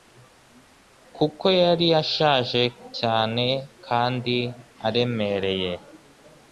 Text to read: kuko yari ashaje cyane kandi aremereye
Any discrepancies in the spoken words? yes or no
no